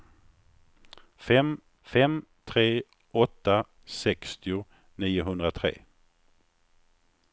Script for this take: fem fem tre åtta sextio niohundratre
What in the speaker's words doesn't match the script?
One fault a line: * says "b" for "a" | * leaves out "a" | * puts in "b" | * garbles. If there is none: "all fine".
all fine